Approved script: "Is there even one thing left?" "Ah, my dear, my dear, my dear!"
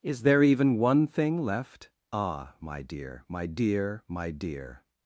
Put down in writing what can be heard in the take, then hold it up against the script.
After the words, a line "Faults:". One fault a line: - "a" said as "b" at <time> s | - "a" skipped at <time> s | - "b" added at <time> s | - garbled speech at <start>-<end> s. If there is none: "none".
"Is there even one thing left?" "Ah, my dear, my dear, my dear!"
Faults:
none